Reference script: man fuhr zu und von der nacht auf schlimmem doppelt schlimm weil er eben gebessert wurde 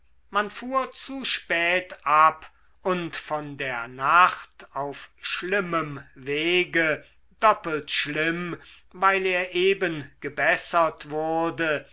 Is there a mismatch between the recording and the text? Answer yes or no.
yes